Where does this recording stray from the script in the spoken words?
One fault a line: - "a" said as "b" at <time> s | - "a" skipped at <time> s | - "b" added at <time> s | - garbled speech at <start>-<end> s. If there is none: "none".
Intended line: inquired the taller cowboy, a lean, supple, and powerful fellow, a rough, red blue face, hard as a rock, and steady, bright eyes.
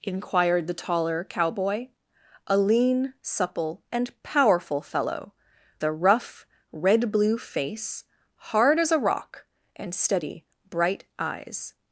none